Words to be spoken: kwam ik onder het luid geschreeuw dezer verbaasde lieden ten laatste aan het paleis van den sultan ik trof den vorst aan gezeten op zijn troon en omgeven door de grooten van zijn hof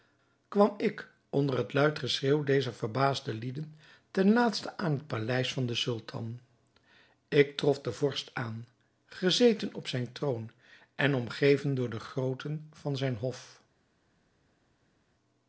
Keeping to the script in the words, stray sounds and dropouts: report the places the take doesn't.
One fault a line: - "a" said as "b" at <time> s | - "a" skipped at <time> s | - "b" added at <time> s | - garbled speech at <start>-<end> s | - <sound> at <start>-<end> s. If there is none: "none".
none